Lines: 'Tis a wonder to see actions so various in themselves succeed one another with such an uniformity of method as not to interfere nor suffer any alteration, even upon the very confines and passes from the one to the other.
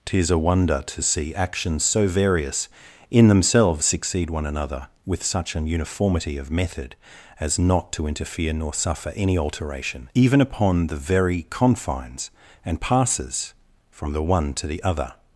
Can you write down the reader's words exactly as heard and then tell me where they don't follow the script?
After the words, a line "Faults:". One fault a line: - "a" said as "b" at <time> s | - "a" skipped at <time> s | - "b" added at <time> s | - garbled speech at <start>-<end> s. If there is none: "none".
'Tis a wonder to see actions so various in themselves succeed one another with such an uniformity of method as not to interfere nor suffer any alteration, even upon the very confines and passes from the one to the other.
Faults:
none